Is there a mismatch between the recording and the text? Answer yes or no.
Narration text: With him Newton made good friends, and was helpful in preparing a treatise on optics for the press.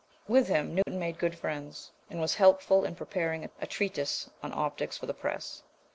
no